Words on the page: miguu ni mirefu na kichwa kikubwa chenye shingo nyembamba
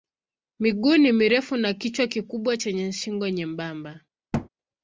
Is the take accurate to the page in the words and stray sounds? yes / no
no